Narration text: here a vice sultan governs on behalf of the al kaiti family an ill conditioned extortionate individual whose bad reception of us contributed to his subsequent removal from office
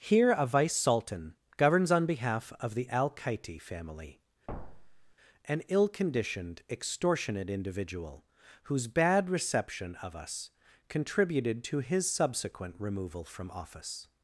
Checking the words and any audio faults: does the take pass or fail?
fail